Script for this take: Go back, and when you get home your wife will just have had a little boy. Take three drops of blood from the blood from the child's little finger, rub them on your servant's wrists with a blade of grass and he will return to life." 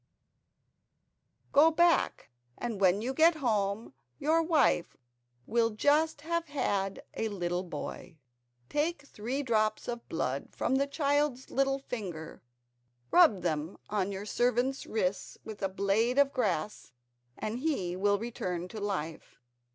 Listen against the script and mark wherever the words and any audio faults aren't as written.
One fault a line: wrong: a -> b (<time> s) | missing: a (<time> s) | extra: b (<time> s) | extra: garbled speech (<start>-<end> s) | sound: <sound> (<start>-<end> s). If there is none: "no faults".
missing: blood from the (10.9 s)